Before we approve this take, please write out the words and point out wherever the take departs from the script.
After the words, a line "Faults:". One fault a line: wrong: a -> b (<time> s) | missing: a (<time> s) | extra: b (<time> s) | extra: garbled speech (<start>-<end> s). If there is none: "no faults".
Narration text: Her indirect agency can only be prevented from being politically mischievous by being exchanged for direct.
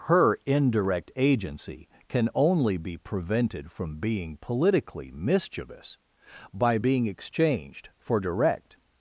Her indirect agency can only be prevented from being politically mischievous by being exchanged for direct.
Faults:
no faults